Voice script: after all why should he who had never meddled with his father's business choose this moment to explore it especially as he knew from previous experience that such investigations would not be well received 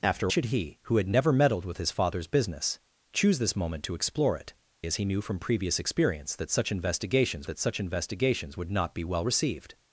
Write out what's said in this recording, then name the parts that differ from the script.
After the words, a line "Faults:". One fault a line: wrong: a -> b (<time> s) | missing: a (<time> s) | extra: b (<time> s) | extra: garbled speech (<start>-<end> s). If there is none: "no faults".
after should he who had never meddled with his father's business choose this moment to explore it as he knew from previous experience that such investigations that such investigations would not be well received
Faults:
missing: all why (0.3 s)
missing: especially (4.5 s)
extra: that such investigations (7.4 s)